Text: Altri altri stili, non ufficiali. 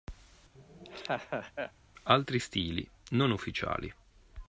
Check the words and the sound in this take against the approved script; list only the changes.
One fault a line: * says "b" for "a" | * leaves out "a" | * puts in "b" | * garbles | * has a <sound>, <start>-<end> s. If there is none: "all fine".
* has a laugh, 0.5-1.7 s
* leaves out "altri"